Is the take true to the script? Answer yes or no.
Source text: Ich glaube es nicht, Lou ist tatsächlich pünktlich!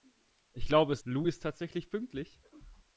no